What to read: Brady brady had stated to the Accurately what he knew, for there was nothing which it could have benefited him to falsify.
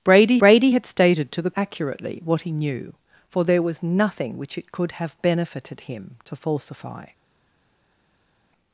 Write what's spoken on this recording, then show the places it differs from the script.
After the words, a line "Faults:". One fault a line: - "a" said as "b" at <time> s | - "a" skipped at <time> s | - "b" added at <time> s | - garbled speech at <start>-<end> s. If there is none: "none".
Brady brady had stated to the Accurately what he knew, for there was nothing which it could have benefited him to falsify.
Faults:
none